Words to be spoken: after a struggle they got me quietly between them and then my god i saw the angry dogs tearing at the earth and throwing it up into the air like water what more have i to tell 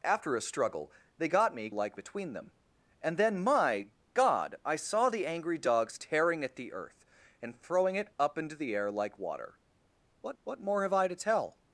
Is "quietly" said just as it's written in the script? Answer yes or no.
no